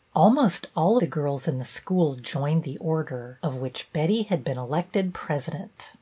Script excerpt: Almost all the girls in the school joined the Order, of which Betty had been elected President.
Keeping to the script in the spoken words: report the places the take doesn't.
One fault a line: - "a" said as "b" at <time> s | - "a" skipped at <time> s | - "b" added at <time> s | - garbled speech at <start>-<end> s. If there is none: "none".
none